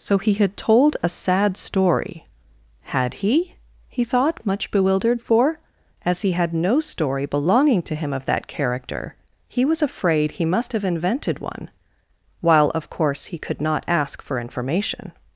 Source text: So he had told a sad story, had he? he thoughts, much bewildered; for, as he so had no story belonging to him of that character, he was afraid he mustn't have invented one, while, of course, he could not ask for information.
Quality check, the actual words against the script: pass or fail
fail